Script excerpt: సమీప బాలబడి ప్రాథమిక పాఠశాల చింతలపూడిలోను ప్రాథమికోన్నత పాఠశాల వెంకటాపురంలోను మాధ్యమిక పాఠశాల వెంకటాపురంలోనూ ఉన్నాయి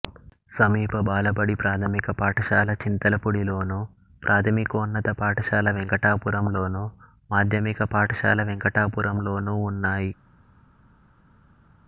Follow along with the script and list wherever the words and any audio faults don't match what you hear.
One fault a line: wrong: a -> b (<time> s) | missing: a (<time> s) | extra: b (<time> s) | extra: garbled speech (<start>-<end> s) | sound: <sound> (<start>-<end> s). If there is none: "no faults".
no faults